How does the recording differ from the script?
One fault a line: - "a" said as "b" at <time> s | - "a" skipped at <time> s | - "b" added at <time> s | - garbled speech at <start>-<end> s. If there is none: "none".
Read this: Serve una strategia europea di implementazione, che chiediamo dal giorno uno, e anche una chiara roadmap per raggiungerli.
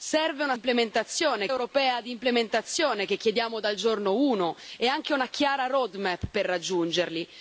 - "strategia" said as "implementazione" at 0.5 s